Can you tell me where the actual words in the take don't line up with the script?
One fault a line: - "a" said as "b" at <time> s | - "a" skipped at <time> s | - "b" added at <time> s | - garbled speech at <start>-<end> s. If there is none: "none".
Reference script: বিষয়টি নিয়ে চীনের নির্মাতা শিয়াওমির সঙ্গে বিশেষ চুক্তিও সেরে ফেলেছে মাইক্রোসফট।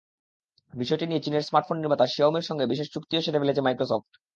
- "স্মার্টফোন" added at 1.5 s